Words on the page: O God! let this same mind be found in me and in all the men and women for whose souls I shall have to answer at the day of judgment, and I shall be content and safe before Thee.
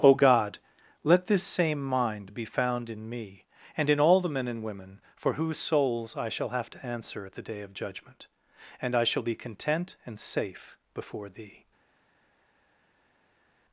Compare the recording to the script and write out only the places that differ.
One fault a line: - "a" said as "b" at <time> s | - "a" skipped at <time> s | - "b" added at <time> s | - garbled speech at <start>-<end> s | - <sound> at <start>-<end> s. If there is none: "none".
none